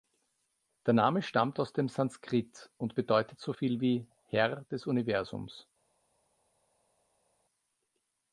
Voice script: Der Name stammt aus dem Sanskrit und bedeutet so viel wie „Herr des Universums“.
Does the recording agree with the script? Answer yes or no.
yes